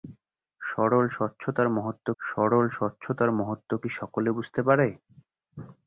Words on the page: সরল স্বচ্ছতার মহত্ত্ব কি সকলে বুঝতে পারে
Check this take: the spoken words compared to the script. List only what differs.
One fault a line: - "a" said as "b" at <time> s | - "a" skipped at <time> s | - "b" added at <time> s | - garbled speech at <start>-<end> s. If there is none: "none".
- "সরল স্বচ্ছতার মহত্ত্ব" added at 2.2 s